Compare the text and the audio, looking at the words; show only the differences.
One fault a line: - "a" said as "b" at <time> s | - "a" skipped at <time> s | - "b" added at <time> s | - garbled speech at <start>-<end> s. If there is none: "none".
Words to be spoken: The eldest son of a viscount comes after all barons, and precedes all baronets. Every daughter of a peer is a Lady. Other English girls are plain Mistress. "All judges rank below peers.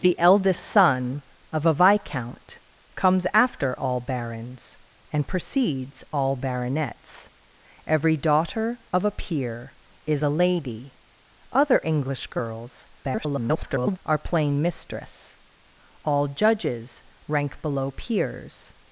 - garbled speech at 13.0-14.0 s